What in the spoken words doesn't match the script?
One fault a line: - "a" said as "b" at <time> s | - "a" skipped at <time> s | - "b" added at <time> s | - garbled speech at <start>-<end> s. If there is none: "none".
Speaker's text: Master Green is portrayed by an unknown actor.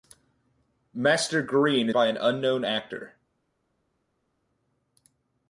- "is portrayed" skipped at 1.9 s